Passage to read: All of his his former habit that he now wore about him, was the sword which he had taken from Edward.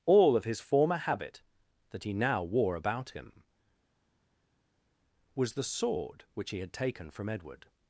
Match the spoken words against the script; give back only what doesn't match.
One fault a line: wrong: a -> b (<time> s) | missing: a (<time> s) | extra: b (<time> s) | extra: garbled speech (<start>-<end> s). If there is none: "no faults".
missing: his (0.6 s)